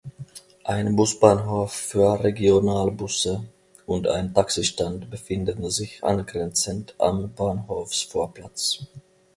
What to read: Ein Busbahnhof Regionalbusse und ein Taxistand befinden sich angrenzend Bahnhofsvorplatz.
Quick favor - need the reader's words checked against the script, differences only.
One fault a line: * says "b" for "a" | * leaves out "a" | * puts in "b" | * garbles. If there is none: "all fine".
* puts in "für"
* puts in "am"